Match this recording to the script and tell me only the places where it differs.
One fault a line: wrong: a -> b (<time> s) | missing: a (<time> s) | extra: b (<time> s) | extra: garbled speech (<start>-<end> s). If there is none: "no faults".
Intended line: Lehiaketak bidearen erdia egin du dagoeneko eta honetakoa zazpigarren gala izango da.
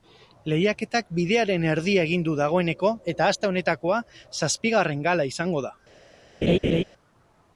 extra: aste (3.3 s)